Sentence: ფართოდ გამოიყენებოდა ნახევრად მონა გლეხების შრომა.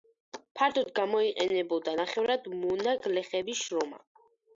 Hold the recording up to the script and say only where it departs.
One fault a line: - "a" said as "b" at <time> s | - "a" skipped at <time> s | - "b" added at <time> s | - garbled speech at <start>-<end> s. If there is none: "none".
none